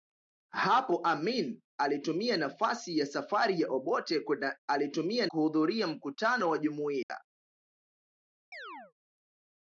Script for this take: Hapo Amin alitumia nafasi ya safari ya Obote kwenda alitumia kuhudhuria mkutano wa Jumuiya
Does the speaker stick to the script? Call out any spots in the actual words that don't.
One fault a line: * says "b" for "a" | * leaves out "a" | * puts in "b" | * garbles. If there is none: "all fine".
all fine